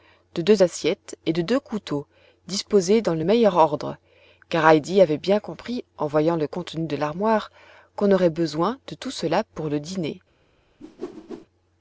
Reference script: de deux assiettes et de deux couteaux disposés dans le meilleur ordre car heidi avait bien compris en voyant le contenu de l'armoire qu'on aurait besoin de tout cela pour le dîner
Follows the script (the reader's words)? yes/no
yes